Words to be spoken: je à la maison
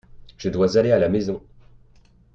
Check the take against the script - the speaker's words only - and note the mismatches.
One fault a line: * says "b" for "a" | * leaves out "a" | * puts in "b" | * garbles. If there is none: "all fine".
* puts in "dois aller"